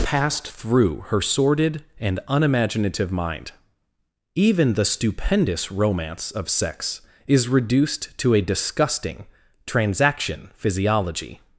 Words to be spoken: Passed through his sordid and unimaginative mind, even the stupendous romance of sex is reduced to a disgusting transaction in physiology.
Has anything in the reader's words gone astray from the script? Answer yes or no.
yes